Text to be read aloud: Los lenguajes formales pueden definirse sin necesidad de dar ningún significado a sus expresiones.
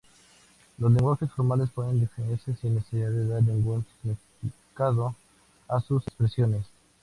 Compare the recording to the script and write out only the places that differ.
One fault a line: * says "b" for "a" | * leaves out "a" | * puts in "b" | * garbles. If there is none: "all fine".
all fine